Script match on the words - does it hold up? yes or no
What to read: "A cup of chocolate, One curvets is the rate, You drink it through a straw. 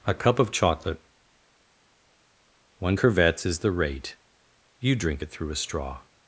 yes